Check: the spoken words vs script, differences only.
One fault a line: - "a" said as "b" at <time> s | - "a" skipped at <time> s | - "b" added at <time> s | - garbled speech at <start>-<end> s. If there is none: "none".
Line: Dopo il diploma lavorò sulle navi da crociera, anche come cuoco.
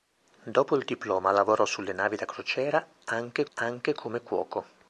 - "anche" added at 3.5 s